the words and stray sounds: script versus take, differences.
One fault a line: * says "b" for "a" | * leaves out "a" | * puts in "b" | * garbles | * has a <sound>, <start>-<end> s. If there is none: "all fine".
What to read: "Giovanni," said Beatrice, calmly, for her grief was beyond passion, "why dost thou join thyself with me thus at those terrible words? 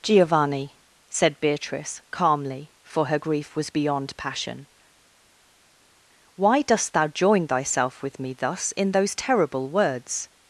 * says "in" for "at"